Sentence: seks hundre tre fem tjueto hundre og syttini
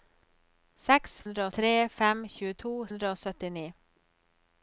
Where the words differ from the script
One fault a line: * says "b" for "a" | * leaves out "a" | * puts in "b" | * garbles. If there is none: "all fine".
all fine